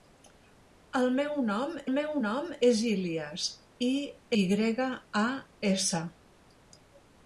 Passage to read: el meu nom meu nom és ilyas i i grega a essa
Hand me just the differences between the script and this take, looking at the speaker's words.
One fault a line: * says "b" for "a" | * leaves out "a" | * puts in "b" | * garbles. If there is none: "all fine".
all fine